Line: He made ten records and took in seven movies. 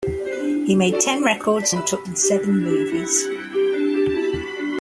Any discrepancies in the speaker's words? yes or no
no